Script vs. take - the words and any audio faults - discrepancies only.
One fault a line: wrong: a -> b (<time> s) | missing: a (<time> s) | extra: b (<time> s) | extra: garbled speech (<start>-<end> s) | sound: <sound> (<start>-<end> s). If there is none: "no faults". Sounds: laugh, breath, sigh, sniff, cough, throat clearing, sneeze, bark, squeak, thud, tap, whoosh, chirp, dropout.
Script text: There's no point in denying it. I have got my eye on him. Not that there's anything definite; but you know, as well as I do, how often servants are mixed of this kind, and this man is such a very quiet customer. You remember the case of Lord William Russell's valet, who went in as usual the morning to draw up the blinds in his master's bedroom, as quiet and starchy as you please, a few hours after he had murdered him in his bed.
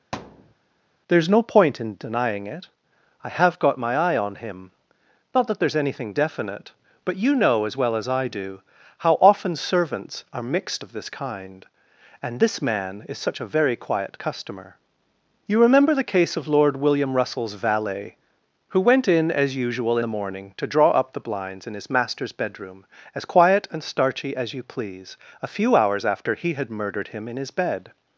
sound: thud (0.1-0.5 s)